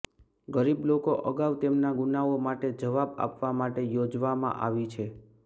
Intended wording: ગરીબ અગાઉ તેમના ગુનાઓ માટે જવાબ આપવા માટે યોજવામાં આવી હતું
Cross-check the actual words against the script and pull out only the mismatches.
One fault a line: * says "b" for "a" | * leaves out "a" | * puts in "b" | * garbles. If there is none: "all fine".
* puts in "લોકો"
* says "છે" for "હતું"